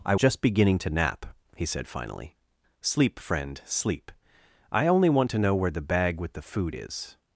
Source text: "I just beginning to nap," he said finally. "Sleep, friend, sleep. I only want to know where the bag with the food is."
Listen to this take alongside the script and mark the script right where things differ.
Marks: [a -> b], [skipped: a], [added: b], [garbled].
"I just beginning to nap," he said finally. "Sleep, friend, sleep. I only want to know where the bag with the food is."